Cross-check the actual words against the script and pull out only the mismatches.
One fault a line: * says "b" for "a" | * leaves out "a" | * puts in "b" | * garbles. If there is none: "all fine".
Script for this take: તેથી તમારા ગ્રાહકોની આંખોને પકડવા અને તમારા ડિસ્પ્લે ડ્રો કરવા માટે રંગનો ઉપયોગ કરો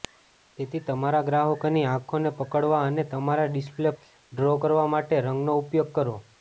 all fine